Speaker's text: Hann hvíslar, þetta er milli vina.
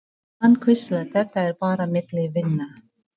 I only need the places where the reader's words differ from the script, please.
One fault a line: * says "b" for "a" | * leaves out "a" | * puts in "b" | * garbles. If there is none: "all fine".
* puts in "bara"